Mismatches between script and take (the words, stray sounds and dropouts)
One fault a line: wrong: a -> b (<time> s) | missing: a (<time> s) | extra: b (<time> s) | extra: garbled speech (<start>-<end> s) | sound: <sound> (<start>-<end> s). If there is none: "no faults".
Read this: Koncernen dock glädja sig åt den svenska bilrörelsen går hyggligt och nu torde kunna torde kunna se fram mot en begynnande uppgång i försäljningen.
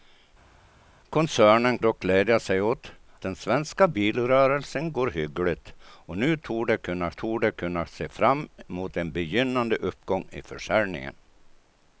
no faults